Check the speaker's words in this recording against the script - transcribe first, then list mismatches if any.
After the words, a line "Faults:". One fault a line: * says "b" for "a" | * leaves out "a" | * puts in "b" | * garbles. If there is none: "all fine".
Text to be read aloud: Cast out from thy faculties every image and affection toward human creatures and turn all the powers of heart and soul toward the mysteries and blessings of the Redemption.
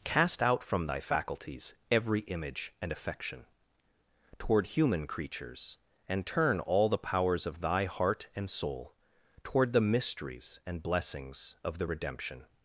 Cast out from thy faculties every image and affection toward human creatures and turn all the powers of thy heart and soul toward the mysteries and blessings of the Redemption.
Faults:
* puts in "thy"